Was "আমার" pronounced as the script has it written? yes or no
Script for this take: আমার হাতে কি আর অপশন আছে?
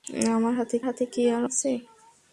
yes